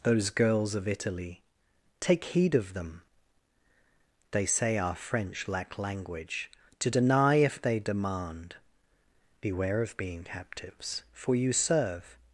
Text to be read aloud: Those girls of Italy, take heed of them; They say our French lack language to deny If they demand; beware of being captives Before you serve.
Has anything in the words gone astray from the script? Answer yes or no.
yes